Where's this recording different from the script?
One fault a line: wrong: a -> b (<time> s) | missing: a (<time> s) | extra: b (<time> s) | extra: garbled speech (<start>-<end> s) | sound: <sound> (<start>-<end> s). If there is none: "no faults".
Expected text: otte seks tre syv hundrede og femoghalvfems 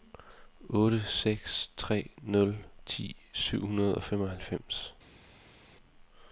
extra: nul ti (2.2 s)